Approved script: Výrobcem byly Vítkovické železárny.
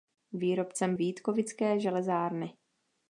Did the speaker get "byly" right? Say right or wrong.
wrong